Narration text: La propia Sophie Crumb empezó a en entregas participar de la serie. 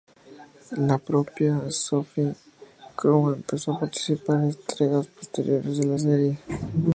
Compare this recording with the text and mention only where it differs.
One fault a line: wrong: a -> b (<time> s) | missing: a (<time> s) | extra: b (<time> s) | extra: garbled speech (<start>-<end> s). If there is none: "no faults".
extra: participar (3.8 s)
wrong: participar -> posteriores (5.1 s)